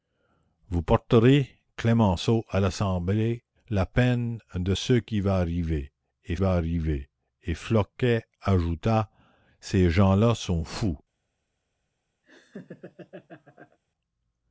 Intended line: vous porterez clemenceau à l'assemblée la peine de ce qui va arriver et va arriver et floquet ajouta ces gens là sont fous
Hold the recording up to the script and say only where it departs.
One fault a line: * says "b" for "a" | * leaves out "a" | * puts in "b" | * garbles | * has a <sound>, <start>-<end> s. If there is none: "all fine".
* has a laugh, 12.2-13.8 s